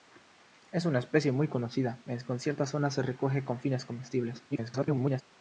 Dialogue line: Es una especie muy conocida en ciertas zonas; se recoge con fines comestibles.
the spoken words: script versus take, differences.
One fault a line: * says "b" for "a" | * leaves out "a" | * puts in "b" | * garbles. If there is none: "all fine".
* garbles